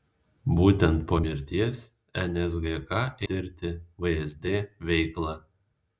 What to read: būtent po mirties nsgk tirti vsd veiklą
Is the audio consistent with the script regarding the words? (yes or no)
yes